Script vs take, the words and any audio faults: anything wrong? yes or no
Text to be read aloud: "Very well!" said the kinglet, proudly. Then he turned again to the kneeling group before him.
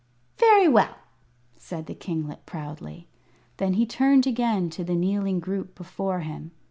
no